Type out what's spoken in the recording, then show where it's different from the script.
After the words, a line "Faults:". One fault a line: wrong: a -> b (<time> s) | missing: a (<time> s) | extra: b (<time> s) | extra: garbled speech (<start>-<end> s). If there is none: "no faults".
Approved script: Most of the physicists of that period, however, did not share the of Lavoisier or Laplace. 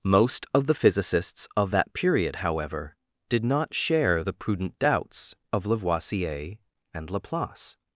Most of the physicists of that period, however, did not share the prudent doubts of Lavoisier and Laplace.
Faults:
extra: prudent doubts (4.3 s)
wrong: or -> and (6.9 s)